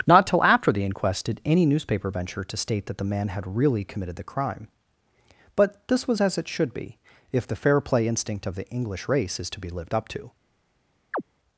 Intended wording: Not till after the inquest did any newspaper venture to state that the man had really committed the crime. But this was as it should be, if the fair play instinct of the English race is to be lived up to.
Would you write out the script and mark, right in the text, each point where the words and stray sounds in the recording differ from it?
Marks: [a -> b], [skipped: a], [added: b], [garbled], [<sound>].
Not till after the inquest did any newspaper venture to state that the man had really committed the crime. But this was as it should be, if the fair play instinct of the English race is to be lived up to. [chirp]